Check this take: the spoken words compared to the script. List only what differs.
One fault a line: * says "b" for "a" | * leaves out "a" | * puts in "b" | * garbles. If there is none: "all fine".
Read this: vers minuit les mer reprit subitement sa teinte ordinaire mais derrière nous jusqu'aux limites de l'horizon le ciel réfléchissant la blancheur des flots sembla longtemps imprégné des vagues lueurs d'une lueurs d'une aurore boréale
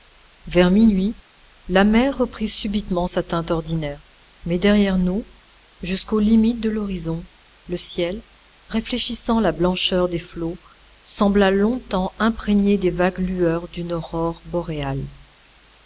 * says "la" for "les"
* leaves out "lueurs d'une"